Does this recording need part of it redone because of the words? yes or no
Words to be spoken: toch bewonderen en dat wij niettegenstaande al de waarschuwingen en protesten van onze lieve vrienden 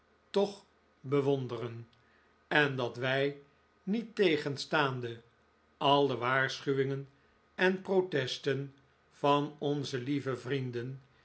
no